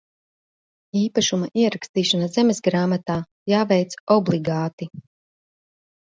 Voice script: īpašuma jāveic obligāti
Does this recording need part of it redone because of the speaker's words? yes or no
yes